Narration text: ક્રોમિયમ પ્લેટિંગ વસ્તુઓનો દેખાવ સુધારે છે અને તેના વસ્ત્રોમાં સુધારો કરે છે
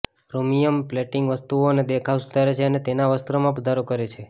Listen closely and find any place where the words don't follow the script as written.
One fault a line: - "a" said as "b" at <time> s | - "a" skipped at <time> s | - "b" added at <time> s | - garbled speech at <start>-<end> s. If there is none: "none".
none